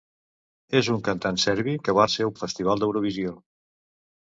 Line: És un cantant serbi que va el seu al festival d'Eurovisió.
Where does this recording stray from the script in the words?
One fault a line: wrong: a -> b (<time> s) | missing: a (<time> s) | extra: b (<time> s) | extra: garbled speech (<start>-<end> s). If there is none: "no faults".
no faults